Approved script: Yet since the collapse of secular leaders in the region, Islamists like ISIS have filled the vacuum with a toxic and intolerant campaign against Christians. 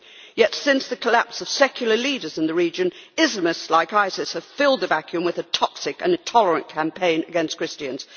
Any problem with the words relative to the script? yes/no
no